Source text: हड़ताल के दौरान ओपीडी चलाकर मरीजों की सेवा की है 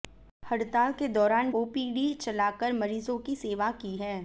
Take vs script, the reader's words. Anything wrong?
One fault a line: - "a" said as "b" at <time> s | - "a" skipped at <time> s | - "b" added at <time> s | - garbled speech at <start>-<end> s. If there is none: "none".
none